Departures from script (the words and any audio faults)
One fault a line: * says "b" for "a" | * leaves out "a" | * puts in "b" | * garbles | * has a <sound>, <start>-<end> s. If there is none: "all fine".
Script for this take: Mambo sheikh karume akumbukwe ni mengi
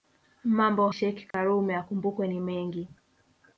* has a dropout, 1.3-1.3 s